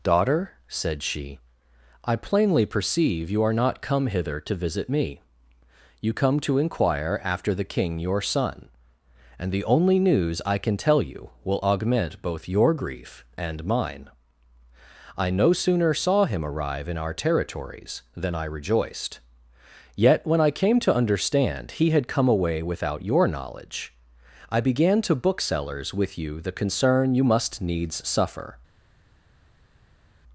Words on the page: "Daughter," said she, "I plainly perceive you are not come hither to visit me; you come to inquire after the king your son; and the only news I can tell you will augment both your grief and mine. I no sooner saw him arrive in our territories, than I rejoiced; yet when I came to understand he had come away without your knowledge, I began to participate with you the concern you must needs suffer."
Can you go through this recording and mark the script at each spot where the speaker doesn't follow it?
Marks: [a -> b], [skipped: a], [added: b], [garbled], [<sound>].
"Daughter," said she, "I plainly perceive you are not come hither to visit me; you come to inquire after the king your son; and the only news I can tell you will augment both your grief and mine. I no sooner saw him arrive in our territories, than I rejoiced; yet when I came to understand he had come away without your knowledge, I began to [participate -> booksellers] with you the concern you must needs suffer."